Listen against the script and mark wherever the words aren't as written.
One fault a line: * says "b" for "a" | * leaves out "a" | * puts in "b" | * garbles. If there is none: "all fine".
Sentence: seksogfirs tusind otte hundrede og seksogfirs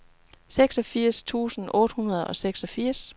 all fine